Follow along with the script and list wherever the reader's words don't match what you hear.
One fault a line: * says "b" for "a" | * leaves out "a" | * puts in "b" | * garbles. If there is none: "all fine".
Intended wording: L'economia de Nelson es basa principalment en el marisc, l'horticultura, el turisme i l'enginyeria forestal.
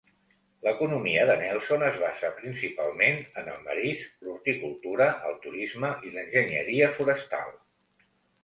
all fine